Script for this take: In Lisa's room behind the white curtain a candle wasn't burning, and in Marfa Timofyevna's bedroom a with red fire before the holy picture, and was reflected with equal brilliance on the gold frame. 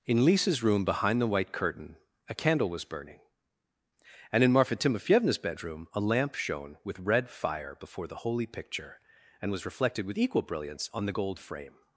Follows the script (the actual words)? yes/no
no